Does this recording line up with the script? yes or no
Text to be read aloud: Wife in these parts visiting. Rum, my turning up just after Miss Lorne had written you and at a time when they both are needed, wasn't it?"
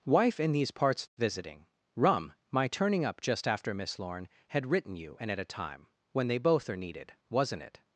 yes